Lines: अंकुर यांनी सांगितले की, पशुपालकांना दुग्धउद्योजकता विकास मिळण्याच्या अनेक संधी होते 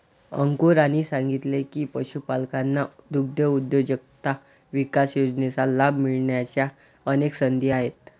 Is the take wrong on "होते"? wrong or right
wrong